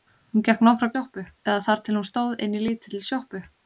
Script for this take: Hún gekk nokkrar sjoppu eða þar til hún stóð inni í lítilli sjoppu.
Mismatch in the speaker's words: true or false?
false